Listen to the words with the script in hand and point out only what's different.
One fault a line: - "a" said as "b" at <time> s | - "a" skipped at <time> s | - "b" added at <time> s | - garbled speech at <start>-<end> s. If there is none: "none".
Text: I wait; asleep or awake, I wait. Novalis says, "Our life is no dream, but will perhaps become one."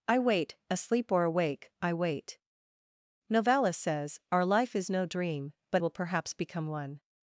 none